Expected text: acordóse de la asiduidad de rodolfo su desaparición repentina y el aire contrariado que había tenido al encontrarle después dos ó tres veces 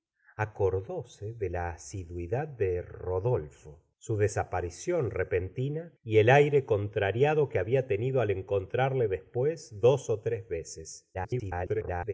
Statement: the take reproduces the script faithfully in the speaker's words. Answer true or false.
false